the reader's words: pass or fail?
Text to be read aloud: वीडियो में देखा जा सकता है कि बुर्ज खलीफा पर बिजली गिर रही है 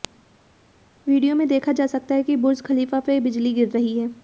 pass